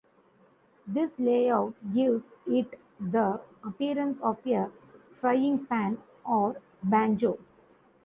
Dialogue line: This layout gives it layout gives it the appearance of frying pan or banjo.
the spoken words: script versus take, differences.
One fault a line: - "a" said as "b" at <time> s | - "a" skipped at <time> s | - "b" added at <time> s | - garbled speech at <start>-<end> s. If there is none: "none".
- "layout gives it" skipped at 2.8 s
- "a" added at 4.5 s